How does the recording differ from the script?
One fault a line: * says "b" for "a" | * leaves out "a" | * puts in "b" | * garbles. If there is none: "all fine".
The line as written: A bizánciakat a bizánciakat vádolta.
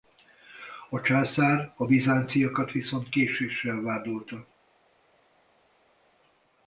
* says "császár" for "bizánciakat"
* puts in "viszont késéssel"